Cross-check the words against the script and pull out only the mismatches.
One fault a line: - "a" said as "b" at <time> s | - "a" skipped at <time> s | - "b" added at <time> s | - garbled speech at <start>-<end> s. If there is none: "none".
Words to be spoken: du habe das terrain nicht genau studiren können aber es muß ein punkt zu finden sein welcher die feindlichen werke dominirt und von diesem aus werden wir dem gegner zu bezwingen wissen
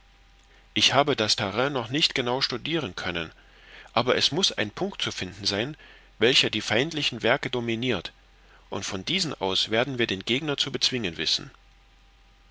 - "du" said as "ich" at 0.7 s
- "noch" added at 1.7 s
- "dem" said as "den" at 10.1 s